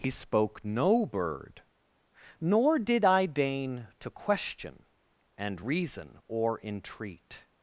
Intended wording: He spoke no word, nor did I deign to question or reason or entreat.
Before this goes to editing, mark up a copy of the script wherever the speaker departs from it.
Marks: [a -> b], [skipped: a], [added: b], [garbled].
He spoke no [word, -> bird] nor did I deign to question [or -> and] reason or entreat.